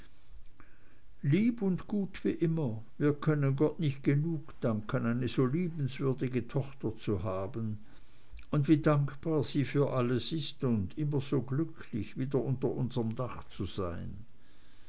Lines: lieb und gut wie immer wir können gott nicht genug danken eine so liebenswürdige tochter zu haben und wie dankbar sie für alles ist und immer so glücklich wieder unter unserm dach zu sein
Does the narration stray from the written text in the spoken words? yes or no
no